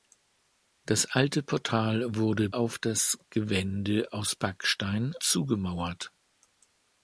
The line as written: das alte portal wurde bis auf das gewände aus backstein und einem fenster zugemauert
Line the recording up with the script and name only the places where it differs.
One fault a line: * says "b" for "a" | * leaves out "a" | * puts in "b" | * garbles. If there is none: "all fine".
* leaves out "bis"
* leaves out "und einem fenster"